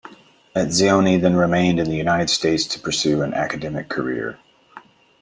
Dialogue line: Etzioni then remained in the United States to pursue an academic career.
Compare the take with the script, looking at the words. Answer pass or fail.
pass